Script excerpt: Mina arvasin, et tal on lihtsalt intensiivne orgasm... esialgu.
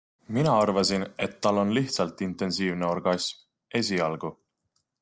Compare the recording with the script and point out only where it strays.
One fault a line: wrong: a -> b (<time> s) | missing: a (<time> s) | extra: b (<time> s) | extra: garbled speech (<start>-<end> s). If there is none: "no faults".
no faults